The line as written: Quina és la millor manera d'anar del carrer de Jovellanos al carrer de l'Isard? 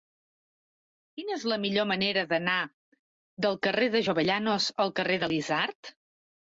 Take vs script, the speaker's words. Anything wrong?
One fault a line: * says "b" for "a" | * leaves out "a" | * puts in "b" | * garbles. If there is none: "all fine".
all fine